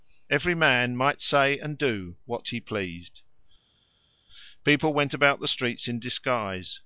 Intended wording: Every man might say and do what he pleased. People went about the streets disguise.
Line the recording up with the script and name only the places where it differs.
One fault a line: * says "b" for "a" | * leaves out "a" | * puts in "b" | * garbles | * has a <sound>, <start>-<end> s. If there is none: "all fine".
* puts in "in"